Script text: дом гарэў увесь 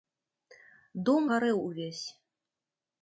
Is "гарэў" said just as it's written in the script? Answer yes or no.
yes